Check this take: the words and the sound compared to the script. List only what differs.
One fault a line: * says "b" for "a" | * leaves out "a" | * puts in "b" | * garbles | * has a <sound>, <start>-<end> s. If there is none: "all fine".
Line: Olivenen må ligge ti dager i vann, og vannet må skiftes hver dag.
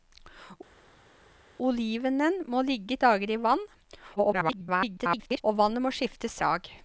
* leaves out "ti"
* garbles
* leaves out "hver"